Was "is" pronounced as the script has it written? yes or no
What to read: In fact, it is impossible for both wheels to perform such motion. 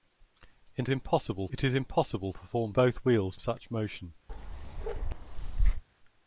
yes